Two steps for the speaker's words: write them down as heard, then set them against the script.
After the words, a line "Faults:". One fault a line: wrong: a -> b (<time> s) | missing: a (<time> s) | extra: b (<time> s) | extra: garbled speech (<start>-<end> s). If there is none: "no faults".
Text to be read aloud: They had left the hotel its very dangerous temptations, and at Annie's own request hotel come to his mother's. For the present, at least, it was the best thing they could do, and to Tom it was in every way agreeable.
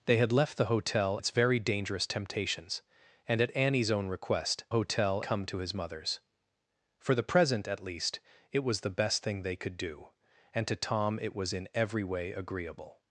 They had left the hotel its very dangerous temptations, and at Annie's own request hotel come to his mother's. For the present, at least, it was the best thing they could do, and to Tom it was in every way agreeable.
Faults:
no faults